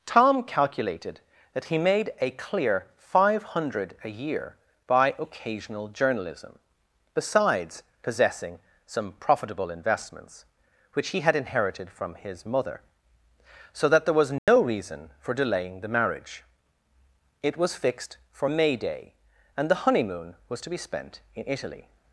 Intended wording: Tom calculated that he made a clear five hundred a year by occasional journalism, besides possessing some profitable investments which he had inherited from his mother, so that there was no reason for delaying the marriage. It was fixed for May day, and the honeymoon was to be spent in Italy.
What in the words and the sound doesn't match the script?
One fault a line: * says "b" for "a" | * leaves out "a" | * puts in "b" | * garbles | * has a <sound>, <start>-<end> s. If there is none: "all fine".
* has a dropout, 14.4-14.5 s